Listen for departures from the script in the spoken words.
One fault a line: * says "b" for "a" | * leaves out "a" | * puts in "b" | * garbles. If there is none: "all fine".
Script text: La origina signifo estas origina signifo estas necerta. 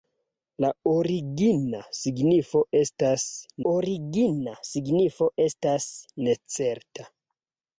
all fine